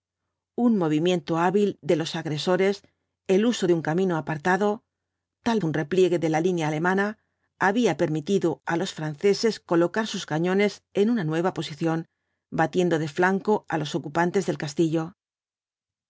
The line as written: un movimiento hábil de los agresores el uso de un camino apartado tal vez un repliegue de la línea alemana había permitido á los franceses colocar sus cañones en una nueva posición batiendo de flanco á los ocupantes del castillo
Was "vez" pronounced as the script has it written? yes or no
no